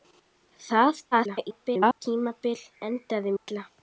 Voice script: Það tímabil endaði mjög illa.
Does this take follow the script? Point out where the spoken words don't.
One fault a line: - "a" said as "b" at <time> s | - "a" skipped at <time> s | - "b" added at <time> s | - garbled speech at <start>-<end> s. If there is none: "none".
- garbled speech at 1.1-2.0 s
- "mjög" skipped at 3.4 s